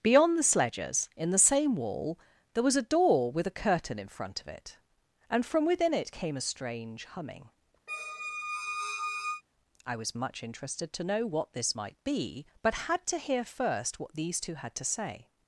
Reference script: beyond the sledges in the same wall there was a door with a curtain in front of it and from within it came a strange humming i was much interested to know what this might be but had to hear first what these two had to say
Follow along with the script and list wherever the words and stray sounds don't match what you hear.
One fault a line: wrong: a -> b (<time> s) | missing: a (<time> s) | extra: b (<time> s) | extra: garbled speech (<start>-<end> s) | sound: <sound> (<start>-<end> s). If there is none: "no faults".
sound: squeak (7.9-9.4 s)